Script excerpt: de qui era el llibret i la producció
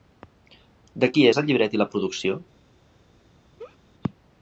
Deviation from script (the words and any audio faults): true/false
true